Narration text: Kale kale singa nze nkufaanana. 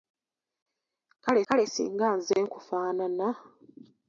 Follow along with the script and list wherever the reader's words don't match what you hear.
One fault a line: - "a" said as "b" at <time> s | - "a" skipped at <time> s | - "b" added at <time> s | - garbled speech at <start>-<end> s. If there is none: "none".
none